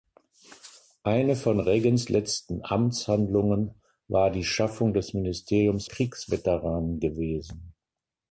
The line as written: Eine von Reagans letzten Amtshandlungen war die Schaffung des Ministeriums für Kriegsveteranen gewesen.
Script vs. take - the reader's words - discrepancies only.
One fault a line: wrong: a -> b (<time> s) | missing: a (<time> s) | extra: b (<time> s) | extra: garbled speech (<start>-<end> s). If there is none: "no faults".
missing: für (5.8 s)